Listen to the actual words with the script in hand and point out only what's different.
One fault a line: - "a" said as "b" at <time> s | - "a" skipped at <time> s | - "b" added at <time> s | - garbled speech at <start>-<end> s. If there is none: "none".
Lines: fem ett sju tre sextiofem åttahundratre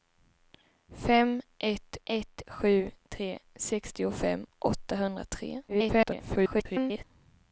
- "ett" added at 2.0 s
- garbled speech at 5.7-7.0 s